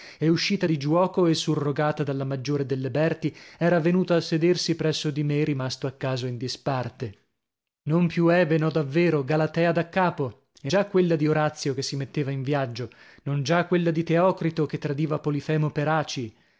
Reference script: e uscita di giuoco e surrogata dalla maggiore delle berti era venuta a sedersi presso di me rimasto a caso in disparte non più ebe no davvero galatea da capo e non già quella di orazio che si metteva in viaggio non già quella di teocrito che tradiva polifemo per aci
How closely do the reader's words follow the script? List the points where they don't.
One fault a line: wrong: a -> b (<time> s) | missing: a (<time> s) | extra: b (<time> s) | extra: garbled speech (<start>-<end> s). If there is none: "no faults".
missing: non (10.7 s)